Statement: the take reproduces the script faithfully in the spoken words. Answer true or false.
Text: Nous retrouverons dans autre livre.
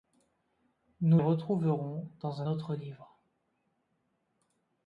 true